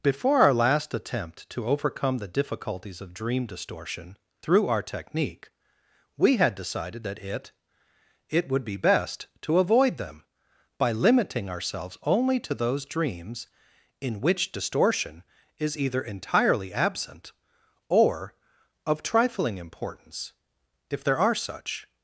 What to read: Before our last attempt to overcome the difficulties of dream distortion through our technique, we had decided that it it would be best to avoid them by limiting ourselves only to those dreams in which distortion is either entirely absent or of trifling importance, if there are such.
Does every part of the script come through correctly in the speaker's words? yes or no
yes